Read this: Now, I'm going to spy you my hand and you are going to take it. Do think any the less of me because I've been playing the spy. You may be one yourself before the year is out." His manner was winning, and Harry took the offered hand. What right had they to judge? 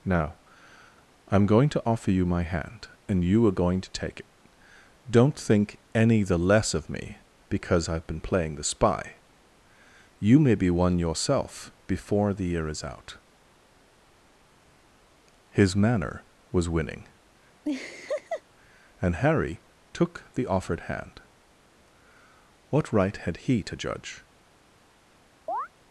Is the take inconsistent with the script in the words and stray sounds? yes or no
yes